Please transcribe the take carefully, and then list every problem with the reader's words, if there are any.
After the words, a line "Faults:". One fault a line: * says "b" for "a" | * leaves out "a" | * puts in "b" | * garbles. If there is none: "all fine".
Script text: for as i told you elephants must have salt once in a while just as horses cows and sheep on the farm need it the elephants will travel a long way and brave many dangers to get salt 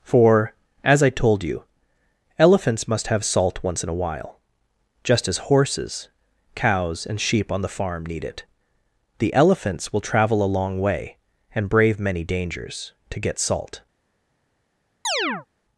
for as i told you elephants must have salt once in a while just as horses cows and sheep on the farm need it the elephants will travel a long way and brave many dangers to get salt
Faults:
all fine